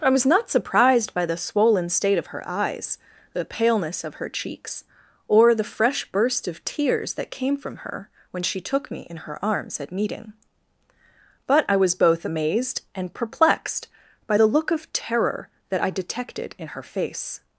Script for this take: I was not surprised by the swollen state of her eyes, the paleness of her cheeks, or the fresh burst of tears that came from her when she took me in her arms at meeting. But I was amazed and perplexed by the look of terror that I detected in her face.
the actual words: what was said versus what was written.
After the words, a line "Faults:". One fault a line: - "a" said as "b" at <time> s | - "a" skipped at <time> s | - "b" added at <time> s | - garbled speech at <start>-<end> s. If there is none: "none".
I was not surprised by the swollen state of her eyes, the paleness of her cheeks, or the fresh burst of tears that came from her when she took me in her arms at meeting. But I was both amazed and perplexed by the look of terror that I detected in her face.
Faults:
- "both" added at 11.9 s